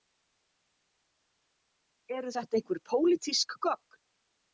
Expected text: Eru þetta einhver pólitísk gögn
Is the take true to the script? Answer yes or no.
yes